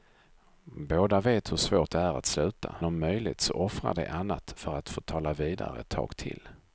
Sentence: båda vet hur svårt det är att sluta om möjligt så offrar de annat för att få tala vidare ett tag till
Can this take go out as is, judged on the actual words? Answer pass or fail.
pass